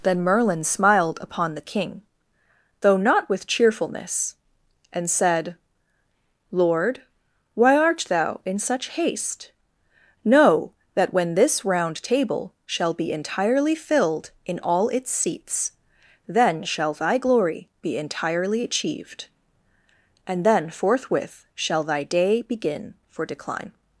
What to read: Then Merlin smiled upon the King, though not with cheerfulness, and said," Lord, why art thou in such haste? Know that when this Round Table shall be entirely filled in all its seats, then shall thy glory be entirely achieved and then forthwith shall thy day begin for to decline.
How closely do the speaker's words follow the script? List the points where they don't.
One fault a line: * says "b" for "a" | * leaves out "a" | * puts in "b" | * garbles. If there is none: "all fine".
* leaves out "to"